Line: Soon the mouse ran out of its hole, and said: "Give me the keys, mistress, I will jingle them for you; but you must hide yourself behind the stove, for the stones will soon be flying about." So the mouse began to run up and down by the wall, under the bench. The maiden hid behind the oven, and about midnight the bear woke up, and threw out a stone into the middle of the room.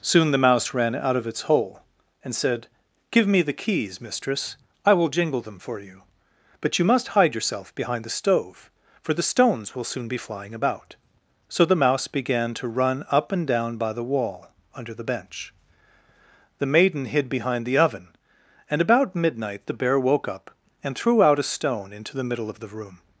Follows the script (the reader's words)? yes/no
yes